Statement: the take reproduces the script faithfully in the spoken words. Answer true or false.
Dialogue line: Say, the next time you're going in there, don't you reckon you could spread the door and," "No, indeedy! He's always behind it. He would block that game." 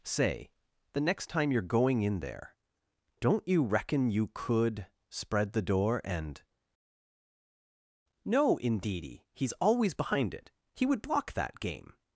true